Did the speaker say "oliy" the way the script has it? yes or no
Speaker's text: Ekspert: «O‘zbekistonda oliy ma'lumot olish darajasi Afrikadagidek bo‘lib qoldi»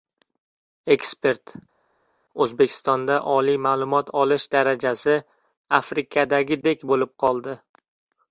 yes